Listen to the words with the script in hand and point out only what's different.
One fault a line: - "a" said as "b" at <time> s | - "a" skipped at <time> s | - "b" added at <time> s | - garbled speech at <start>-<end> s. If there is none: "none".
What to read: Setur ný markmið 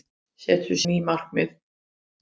none